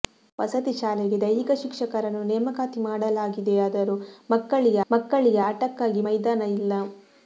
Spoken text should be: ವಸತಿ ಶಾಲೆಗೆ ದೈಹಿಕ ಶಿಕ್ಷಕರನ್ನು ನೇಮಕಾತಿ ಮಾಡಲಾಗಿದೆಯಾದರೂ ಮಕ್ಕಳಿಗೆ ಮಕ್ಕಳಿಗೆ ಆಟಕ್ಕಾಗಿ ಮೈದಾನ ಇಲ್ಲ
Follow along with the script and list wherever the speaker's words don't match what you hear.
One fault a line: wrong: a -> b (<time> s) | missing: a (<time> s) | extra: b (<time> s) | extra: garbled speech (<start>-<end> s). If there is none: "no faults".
no faults